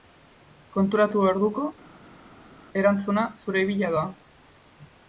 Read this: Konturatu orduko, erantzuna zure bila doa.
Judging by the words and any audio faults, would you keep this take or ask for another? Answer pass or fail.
pass